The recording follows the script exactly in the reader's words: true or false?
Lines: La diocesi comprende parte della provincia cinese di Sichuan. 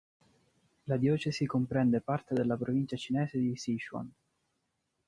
true